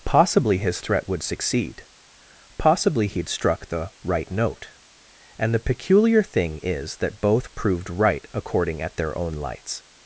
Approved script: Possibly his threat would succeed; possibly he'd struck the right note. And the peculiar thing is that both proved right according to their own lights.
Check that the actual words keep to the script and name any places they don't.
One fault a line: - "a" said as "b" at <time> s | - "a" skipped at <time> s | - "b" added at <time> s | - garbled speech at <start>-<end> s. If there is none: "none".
- "to" said as "at" at 8.8 s